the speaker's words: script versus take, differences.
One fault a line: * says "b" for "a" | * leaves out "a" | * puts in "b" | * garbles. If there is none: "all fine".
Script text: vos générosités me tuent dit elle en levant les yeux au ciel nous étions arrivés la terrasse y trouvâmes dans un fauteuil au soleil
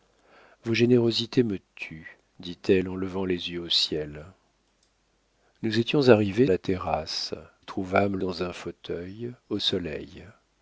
all fine